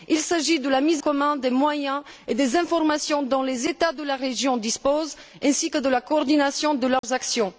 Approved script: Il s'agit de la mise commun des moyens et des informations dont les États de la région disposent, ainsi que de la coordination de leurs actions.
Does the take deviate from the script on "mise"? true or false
false